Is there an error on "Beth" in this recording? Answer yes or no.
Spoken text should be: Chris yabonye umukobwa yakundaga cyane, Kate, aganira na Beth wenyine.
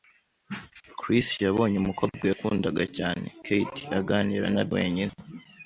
yes